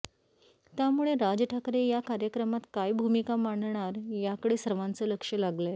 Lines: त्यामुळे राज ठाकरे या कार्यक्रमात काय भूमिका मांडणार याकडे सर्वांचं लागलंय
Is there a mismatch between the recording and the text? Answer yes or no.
yes